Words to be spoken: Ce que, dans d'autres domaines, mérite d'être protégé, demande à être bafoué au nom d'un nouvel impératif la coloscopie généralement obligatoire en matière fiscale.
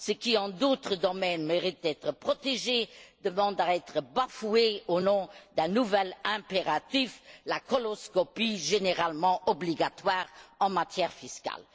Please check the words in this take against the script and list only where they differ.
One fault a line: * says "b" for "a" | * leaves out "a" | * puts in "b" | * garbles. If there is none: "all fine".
* says "qui" for "que"